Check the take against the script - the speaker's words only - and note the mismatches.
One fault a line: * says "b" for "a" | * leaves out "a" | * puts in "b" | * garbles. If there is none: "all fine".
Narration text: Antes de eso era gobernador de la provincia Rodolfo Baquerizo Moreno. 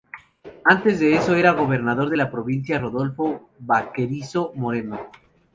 all fine